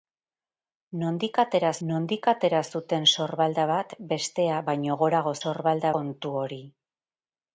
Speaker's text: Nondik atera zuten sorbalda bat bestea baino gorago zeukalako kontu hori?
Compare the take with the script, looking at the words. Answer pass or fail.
fail